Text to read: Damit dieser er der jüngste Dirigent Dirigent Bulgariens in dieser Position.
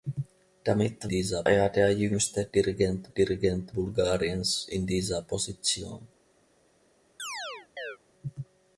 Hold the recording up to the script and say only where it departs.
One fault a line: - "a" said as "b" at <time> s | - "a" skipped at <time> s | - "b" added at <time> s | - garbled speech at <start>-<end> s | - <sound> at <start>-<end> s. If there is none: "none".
- chirp at 7.2-8.0 s